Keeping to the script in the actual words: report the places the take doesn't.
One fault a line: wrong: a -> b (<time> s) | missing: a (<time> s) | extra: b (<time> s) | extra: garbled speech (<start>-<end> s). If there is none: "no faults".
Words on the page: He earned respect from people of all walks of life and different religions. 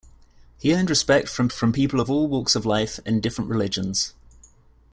extra: from (1.5 s)